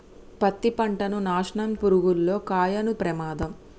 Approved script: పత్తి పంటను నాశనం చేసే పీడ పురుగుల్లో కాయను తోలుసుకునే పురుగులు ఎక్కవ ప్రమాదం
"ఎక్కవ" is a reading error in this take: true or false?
true